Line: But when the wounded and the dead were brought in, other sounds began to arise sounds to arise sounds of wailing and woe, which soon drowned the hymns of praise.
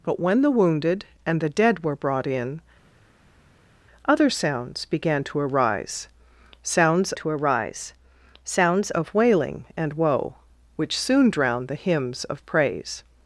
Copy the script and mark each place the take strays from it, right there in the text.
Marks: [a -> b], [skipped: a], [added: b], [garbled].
But when the wounded and the dead were brought in, other sounds began to arise sounds to arise sounds of wailing and woe, which soon drowned the hymns of praise.